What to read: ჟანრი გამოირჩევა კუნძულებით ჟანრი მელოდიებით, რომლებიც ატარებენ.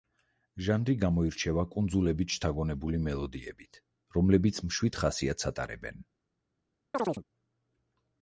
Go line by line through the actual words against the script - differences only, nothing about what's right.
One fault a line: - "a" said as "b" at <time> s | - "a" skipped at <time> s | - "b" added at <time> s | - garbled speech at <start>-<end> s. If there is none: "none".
- "ჟანრი" said as "შთაგონებული" at 2.3 s
- "მშვიდ ხასიათს" added at 4.7 s